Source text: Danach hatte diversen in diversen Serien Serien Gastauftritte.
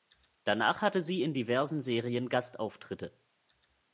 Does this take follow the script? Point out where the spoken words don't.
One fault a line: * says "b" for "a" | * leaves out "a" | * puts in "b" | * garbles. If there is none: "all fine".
* says "sie" for "diversen"
* leaves out "Serien"